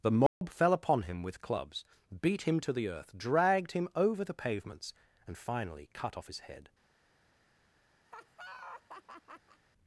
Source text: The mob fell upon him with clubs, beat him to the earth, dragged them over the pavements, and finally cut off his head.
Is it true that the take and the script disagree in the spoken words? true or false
true